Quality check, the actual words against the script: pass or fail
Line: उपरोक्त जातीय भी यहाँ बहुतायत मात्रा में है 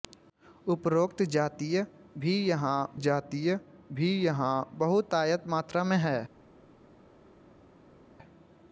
fail